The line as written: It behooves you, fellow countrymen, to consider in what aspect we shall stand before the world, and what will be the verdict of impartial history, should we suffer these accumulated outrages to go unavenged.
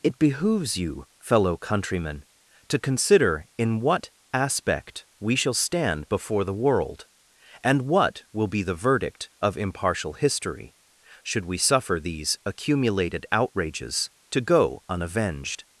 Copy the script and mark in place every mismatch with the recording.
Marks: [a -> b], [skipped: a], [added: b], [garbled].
It behooves you, fellow countrymen, to consider in what aspect we shall stand before the world, and what will be the verdict of impartial history, should we suffer these accumulated outrages to go unavenged.